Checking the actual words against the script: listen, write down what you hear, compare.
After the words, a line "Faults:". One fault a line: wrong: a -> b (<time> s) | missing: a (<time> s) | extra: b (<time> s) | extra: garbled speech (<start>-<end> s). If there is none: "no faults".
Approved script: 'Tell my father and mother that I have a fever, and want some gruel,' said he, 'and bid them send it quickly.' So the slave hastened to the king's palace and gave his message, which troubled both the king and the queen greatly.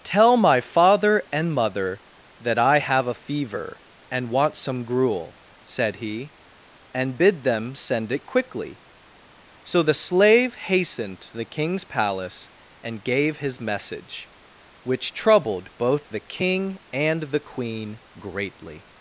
'Tell my father and mother that I have a fever, and want some gruel,' said he, 'and bid them send it quickly.' So the slave hastened to the king's palace and gave his message, which troubled both the king and the queen greatly.
Faults:
no faults